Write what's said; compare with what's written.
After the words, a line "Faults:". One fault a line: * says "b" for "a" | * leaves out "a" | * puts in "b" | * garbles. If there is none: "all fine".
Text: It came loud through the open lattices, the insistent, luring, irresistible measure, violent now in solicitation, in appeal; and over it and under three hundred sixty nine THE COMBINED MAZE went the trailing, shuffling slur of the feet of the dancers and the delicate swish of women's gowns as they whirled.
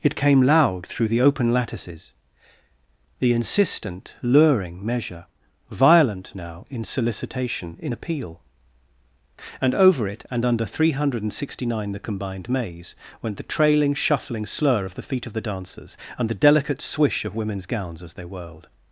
It came loud through the open lattices, the insistent, luring, measure, violent now in solicitation, in appeal; and over it and under three hundred sixty nine THE COMBINED MAZE went the trailing, shuffling slur of the feet of the dancers and the delicate swish of women's gowns as they whirled.
Faults:
* leaves out "irresistible"